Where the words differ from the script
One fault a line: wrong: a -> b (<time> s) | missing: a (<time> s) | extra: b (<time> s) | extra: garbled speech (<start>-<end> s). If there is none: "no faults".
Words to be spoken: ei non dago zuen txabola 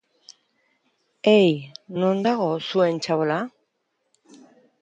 no faults